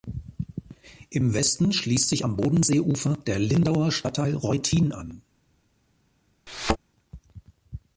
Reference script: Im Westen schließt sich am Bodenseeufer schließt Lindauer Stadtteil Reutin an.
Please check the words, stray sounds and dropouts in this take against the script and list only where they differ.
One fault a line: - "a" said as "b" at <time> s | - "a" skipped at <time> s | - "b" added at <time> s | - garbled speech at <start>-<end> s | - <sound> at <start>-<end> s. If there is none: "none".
- "schließt" said as "der" at 3.2 s
- thud at 6.5-6.8 s